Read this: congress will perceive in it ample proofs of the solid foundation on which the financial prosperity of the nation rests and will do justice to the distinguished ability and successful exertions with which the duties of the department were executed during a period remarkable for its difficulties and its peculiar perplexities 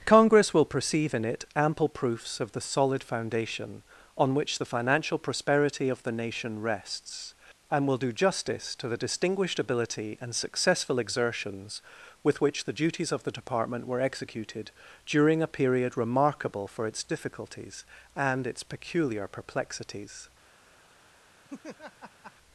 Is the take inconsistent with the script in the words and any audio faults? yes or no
yes